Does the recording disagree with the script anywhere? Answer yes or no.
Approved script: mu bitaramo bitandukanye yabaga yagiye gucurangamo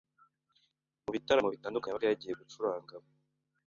no